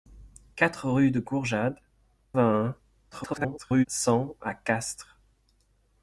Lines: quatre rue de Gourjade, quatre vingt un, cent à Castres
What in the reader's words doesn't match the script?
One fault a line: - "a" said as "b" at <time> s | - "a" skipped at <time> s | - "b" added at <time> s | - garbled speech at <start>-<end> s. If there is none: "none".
- "quatre" skipped at 1.8 s
- garbled speech at 3.1-3.9 s